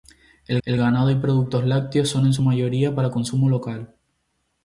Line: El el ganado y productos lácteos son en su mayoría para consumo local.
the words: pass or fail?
pass